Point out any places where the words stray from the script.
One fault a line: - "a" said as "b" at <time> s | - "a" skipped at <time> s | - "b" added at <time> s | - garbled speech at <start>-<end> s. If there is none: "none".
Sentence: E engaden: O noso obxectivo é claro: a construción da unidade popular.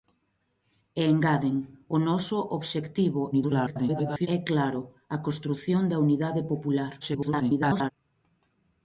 - garbled speech at 3.3-4.3 s
- garbled speech at 7.0-7.9 s